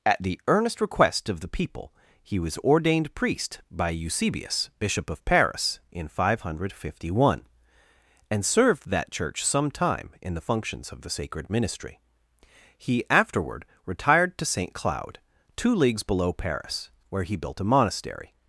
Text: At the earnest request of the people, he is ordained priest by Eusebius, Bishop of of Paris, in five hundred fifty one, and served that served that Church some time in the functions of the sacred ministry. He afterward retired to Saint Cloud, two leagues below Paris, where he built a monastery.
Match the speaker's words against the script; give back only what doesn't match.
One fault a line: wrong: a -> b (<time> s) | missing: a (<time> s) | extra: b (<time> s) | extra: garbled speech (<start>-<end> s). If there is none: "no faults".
wrong: is -> was (2.4 s)
missing: of (5.2 s)
missing: served that (9.1 s)